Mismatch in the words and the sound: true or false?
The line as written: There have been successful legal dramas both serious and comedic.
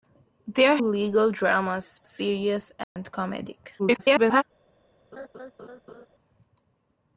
true